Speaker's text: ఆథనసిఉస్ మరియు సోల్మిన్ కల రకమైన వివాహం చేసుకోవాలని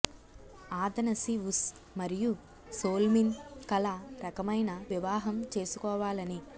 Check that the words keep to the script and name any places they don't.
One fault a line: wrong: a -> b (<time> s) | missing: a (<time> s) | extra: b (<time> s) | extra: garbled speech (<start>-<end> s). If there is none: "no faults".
no faults